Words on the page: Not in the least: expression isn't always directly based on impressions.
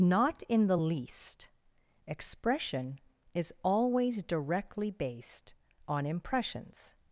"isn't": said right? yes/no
no